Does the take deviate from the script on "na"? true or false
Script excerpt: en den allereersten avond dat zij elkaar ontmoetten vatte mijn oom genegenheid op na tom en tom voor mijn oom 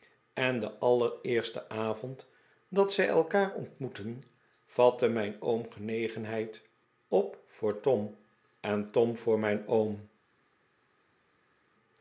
true